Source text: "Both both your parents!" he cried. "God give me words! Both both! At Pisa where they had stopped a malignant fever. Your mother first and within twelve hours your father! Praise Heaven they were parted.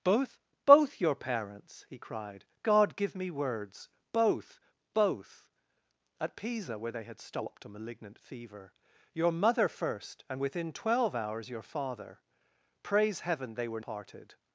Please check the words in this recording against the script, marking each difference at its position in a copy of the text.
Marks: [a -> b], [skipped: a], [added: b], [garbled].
"Both both your parents!" he cried. "God give me words! Both both! At Pisa where they had stopped a malignant fever. Your mother first and within twelve hours your father! Praise Heaven they were parted.